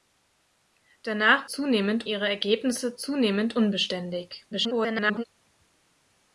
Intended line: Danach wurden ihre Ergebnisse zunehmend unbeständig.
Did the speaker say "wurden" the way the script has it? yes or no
no